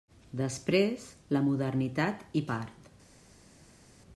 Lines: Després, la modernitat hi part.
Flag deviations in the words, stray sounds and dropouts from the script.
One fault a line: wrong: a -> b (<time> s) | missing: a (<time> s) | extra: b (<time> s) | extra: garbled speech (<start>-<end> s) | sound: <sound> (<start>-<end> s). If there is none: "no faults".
no faults